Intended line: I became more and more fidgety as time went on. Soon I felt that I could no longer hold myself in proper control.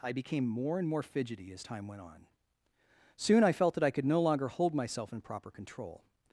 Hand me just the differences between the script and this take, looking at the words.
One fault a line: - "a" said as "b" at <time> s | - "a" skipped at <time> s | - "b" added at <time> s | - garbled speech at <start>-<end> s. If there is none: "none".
none